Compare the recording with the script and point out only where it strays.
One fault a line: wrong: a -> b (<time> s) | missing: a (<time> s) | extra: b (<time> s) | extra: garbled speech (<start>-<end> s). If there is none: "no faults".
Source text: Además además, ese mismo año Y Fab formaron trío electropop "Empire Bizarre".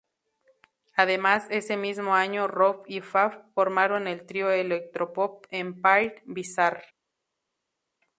missing: además (1.4 s)
extra: Rob (2.5 s)
extra: el (4.1 s)